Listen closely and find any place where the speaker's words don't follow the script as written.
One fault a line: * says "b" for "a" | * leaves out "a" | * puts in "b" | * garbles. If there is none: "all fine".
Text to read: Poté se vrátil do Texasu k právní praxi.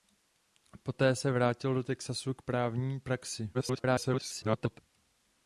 * garbles